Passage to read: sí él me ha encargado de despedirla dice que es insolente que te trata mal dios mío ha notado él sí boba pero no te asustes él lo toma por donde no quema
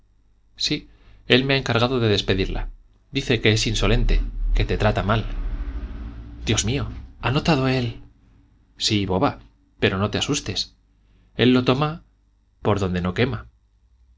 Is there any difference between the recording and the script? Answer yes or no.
no